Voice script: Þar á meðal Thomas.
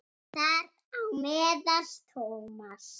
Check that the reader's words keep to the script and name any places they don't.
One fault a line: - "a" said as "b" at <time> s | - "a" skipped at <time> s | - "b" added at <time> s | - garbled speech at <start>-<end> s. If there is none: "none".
none